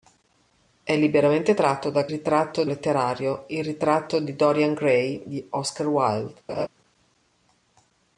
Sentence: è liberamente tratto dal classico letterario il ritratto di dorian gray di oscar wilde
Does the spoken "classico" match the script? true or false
false